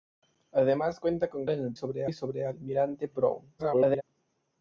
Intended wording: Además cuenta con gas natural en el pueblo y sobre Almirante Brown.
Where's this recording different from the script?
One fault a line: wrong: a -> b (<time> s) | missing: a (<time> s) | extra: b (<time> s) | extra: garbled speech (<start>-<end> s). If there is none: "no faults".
missing: gas natural (1.4 s)
wrong: pueblo -> sobre (1.7 s)
extra: garbled speech (3.6-4.0 s)